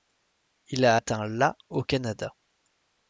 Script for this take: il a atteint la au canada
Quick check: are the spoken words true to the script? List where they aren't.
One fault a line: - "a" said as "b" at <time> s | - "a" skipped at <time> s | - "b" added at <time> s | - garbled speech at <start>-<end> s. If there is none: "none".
none